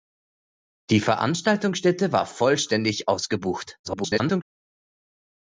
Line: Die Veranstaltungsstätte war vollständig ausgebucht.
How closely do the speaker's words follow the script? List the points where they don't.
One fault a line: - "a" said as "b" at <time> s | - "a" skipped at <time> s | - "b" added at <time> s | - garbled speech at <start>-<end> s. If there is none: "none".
- garbled speech at 3.8-4.4 s